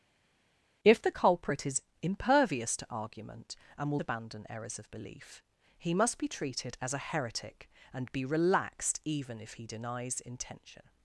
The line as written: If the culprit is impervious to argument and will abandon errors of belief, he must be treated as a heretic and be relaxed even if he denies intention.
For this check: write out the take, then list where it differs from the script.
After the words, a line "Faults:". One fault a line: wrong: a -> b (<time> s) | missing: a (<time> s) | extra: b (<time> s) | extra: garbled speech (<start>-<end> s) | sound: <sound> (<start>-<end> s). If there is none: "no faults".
If the culprit is impervious to argument and will abandon errors of belief, he must be treated as a heretic and be relaxed even if he denies intention.
Faults:
no faults